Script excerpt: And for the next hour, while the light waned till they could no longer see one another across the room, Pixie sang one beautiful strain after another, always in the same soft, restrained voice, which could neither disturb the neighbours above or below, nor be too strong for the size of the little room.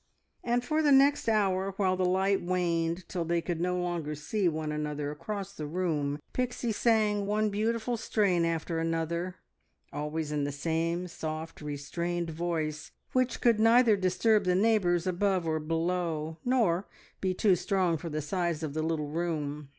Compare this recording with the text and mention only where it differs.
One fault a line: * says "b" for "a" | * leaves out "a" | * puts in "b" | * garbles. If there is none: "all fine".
all fine